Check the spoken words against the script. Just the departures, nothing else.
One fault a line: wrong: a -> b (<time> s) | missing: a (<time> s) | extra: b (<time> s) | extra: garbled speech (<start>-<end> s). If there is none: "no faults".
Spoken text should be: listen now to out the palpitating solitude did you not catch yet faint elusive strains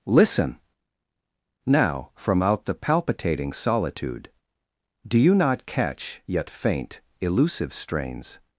wrong: to -> from (2.2 s)
wrong: did -> do (5.1 s)